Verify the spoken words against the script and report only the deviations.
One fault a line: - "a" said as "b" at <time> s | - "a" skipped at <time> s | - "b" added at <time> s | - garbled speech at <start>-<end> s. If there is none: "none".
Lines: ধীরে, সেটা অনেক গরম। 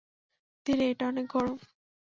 - "সেটা" said as "এটা" at 0.9 s